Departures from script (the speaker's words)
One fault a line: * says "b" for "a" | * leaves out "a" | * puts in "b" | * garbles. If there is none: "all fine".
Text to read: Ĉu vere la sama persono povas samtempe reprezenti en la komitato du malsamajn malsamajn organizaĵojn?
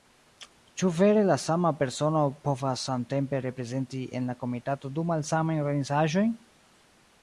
* leaves out "malsamajn"